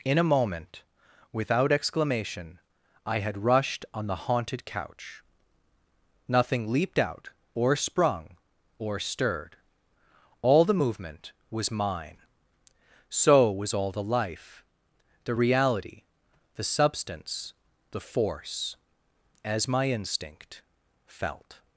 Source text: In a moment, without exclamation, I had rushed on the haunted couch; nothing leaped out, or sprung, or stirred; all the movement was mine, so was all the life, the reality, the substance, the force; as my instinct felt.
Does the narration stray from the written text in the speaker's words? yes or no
no